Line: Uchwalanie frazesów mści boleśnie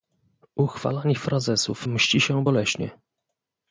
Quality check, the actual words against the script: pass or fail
fail